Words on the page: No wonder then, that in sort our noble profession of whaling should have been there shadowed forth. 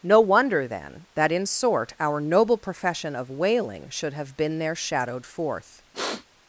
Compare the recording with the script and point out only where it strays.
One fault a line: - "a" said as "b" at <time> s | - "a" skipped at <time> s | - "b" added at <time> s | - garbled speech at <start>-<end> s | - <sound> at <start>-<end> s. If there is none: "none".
- sniff at 5.9-6.3 s